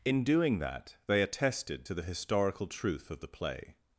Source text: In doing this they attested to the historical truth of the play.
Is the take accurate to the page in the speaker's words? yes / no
no